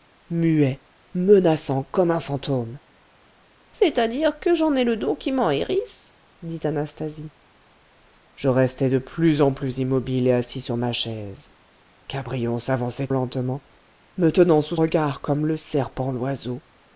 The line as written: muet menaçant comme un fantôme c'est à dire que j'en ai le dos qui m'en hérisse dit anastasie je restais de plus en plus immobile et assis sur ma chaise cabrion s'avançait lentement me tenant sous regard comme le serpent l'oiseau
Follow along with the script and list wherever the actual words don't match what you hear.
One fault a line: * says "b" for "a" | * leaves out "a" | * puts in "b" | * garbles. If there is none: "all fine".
all fine